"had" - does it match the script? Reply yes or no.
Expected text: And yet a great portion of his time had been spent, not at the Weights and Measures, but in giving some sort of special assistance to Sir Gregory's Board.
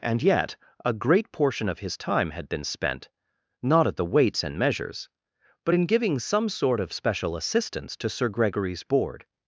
yes